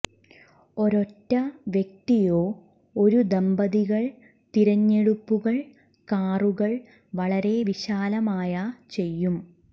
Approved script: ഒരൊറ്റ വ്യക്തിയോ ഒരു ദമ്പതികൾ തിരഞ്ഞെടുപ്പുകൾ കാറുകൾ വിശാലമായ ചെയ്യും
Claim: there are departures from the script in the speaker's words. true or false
true